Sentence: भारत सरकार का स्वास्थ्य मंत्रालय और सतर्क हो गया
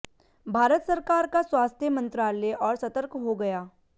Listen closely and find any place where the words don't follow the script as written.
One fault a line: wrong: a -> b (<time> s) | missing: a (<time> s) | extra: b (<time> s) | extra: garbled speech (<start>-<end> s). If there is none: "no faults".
no faults